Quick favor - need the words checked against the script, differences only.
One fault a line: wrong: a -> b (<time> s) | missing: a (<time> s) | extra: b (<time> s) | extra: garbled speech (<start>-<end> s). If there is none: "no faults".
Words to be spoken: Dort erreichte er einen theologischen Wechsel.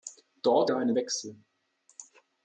missing: erreichte (0.7 s)
missing: theologischen (1.0 s)